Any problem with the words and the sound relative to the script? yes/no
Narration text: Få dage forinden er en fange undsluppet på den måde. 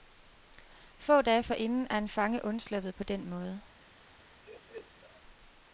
yes